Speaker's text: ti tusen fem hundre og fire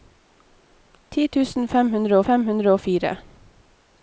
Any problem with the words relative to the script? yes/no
yes